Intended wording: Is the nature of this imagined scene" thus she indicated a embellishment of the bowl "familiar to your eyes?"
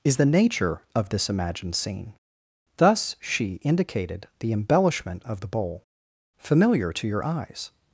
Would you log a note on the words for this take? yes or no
yes